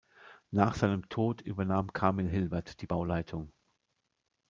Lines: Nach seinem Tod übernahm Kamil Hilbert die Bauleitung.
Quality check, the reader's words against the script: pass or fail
pass